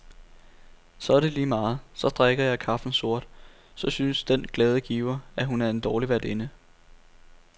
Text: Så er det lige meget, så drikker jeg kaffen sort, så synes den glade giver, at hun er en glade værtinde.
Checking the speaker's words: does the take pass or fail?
fail